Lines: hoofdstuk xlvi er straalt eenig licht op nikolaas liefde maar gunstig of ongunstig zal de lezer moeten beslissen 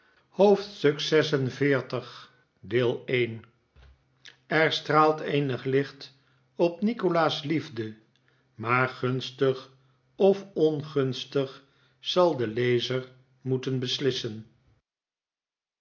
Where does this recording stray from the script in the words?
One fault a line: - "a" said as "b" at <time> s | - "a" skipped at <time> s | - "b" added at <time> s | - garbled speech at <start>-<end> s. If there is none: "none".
none